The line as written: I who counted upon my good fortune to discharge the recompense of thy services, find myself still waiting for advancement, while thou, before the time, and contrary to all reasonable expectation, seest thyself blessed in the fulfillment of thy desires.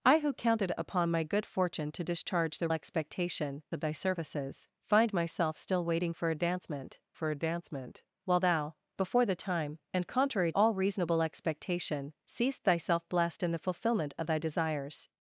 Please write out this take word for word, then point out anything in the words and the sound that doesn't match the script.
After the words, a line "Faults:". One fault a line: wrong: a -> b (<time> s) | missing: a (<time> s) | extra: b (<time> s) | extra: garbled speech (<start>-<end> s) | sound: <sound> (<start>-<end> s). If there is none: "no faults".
I who counted upon my good fortune to discharge the expectation of thy services, find myself still waiting for advancement for advancement, while thou, before the time, and contrary all reasonable expectation, seest thyself blessed in the fulfillment of thy desires.
Faults:
wrong: recompense -> expectation (2.7 s)
extra: for advancement (7.1 s)
missing: to (10.5 s)